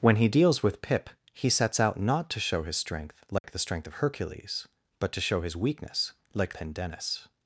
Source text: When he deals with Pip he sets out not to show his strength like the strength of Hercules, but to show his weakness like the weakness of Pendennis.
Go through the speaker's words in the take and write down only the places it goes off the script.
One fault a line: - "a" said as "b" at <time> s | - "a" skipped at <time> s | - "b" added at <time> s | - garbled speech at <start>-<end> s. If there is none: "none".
- "the weakness of" skipped at 6.5 s